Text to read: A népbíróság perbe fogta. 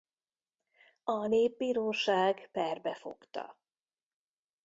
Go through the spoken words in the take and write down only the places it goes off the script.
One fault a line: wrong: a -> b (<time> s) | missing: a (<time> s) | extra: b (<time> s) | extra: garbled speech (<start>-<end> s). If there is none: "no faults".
no faults